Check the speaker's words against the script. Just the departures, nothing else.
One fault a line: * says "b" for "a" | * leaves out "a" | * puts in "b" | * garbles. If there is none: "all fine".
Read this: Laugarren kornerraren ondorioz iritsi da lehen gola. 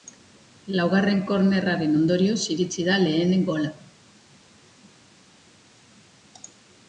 all fine